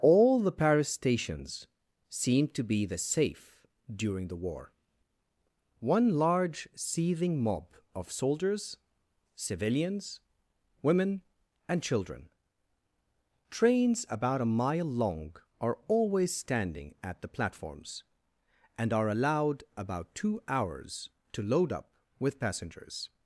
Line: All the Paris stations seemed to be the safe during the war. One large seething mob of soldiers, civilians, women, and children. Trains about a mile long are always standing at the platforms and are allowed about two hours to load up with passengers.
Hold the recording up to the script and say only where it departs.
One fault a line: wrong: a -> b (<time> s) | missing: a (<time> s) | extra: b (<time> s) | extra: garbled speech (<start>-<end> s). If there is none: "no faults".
no faults